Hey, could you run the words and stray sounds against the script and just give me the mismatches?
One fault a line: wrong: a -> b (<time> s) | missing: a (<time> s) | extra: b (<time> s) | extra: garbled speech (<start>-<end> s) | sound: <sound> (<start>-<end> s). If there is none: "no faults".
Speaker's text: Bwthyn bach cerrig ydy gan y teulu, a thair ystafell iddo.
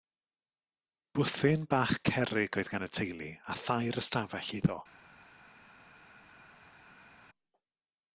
wrong: ydy -> oedd (2.6 s)